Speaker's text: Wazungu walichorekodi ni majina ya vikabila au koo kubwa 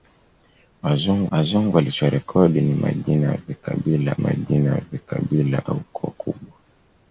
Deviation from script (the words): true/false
true